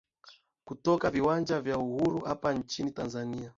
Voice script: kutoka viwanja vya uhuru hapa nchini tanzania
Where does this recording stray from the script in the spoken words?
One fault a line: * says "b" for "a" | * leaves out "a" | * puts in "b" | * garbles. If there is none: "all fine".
all fine